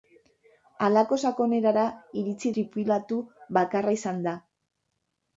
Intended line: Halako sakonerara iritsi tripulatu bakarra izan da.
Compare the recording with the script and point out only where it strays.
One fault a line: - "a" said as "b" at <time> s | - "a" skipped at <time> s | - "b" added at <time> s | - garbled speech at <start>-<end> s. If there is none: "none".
none